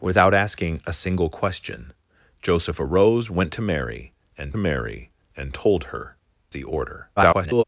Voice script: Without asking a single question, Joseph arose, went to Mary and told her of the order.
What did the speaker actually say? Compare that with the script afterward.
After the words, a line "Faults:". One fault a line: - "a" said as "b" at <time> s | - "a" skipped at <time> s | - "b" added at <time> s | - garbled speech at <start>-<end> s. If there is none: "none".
Without asking a single question, Joseph arose, went to Mary and Mary and told her the order. [garbled]
Faults:
- "Mary and" added at 4.6 s
- "of" skipped at 6.2 s
- garbled speech at 7.2-7.6 s